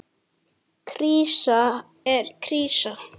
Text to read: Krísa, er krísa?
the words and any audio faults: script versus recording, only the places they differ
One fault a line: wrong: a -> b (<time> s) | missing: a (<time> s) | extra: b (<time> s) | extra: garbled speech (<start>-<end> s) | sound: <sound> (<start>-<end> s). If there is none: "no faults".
no faults